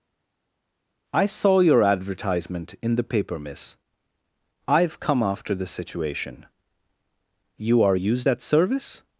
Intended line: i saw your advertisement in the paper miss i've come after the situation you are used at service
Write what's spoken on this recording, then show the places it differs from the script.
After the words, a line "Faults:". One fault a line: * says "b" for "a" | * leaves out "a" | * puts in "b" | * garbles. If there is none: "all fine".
i saw your advertisement in the paper miss i've come after the situation you are used at service
Faults:
all fine